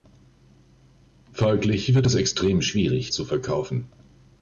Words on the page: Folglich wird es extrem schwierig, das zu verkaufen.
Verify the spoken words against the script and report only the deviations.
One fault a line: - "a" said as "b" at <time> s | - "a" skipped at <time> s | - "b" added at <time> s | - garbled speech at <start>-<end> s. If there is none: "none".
- "das" skipped at 3.1 s